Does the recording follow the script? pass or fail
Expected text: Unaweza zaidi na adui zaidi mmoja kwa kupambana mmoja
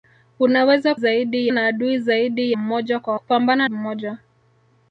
pass